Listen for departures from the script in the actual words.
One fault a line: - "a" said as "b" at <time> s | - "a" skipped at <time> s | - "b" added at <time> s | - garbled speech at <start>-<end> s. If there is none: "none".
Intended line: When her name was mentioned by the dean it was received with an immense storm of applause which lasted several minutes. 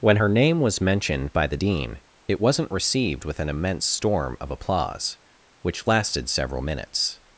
- "was" said as "wasn't" at 2.4 s